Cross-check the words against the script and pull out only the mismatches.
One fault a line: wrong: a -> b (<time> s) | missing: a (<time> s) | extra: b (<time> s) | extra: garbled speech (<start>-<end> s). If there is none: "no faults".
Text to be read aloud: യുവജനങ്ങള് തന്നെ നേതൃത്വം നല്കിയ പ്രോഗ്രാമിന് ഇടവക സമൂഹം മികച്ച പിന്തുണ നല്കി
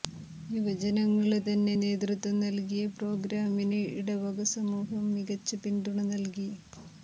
no faults